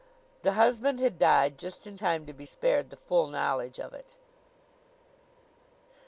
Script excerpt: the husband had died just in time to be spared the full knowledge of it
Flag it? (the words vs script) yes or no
no